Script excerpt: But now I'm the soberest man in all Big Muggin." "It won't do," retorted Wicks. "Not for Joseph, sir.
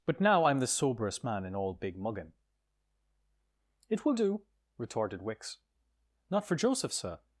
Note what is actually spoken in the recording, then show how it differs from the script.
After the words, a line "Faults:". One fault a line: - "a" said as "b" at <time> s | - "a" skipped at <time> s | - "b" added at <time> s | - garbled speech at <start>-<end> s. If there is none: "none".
But now I'm the soberest man in all Big Muggin." "It will do," retorted Wicks. "Not for Joseph, sir.
Faults:
- "won't" said as "will" at 4.0 s